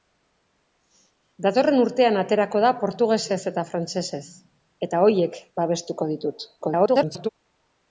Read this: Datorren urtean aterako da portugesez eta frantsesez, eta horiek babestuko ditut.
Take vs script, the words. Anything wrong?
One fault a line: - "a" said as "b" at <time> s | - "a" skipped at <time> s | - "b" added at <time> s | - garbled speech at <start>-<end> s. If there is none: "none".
- garbled speech at 6.6-7.3 s